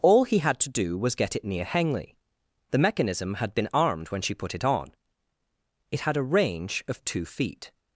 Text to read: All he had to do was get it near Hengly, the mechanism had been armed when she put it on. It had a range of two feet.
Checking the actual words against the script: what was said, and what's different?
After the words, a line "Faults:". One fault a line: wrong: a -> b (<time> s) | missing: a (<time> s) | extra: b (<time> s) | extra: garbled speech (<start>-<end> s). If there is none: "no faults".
All he had to do was get it near Hengly, the mechanism had been armed when she put it on. It had a range of two feet.
Faults:
no faults